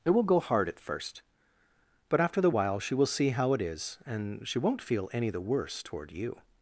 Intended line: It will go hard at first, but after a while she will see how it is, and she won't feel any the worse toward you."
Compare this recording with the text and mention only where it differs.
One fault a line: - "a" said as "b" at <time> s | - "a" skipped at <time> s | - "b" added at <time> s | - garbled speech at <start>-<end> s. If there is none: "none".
- "a" said as "the" at 2.4 s